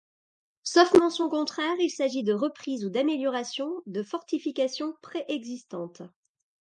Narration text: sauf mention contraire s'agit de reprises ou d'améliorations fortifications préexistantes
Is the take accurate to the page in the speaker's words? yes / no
no